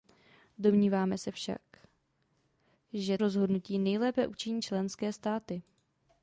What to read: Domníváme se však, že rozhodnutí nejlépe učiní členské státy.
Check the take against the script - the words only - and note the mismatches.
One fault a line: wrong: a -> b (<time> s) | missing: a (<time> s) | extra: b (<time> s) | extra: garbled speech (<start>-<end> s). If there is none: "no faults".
no faults